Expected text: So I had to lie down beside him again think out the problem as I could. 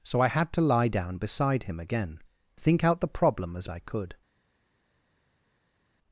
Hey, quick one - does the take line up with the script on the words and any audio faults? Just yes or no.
yes